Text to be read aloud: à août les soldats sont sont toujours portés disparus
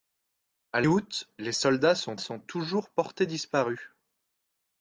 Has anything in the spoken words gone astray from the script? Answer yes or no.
no